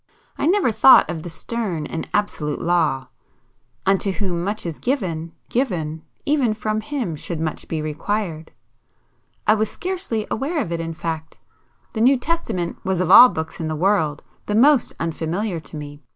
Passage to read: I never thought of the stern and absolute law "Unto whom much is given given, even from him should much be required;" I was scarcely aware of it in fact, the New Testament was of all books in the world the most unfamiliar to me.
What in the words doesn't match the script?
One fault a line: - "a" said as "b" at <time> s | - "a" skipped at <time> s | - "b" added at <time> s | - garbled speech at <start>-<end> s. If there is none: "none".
none